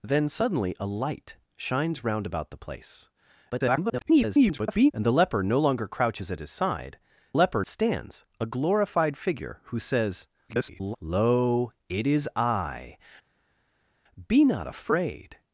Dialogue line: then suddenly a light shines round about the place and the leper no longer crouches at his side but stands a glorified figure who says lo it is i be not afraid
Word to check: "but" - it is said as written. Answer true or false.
false